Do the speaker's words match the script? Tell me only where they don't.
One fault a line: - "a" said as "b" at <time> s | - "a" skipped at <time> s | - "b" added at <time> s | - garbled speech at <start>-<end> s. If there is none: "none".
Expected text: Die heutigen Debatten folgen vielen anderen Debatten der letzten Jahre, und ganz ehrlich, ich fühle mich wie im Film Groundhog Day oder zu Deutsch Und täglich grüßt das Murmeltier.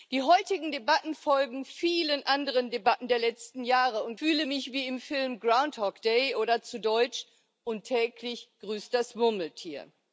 - "ganz ehrlich ich" skipped at 4.2 s